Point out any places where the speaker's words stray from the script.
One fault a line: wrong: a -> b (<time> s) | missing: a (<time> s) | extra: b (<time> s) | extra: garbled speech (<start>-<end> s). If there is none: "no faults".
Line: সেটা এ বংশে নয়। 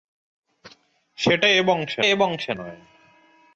extra: এ বংশে (2.0 s)